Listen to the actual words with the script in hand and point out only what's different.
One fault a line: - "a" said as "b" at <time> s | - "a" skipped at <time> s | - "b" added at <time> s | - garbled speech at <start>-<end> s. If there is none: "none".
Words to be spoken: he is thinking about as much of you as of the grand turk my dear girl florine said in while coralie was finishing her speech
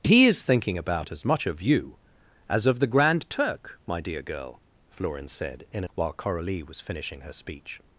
none